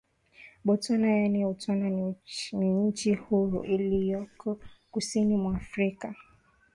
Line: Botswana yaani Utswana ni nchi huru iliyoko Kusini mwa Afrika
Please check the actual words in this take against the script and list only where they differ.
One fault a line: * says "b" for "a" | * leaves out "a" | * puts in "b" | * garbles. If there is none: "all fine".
all fine